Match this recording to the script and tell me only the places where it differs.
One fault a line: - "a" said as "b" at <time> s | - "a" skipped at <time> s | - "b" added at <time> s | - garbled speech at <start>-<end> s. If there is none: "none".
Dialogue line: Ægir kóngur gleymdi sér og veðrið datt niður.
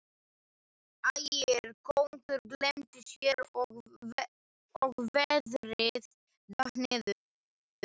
none